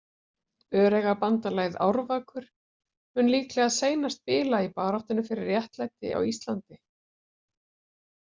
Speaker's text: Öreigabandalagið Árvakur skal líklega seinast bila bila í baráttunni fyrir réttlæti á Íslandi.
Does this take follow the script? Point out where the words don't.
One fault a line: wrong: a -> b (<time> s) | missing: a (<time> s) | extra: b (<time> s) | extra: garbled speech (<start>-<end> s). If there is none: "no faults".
wrong: skal -> mun (3.2 s)
missing: bila (4.6 s)